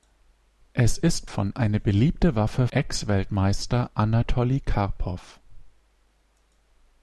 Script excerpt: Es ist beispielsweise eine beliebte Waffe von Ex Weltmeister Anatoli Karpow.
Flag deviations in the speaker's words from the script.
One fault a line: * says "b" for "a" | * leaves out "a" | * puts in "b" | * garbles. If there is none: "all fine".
* says "von" for "beispielsweise"
* leaves out "von"